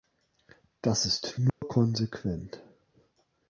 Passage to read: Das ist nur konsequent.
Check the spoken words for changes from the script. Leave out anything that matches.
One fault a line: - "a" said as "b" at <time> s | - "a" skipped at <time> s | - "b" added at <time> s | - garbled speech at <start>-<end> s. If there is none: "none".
none